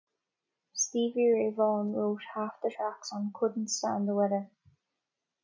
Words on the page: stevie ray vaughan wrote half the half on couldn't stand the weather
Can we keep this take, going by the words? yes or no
no